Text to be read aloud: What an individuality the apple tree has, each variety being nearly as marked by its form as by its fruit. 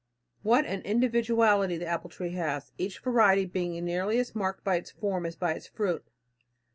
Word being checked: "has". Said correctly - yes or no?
yes